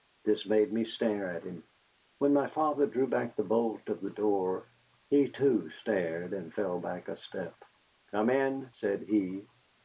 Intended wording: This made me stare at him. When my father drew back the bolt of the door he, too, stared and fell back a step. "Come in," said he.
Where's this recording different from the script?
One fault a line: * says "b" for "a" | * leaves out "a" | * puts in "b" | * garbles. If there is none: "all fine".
all fine